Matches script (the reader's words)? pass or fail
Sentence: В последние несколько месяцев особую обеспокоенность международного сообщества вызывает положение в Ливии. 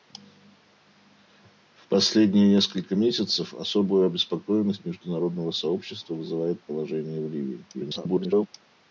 fail